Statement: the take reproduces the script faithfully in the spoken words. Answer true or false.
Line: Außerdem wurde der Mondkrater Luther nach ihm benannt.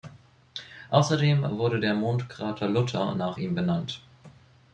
true